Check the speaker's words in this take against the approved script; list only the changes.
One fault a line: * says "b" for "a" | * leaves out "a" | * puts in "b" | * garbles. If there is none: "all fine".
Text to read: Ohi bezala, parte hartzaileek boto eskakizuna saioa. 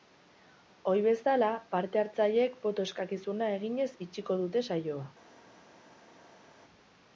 * puts in "eginez itxiko dute"